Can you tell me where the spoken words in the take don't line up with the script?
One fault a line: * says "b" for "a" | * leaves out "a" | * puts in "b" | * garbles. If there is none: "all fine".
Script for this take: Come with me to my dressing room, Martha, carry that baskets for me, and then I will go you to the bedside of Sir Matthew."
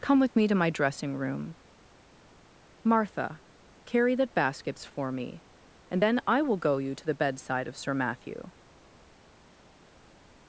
all fine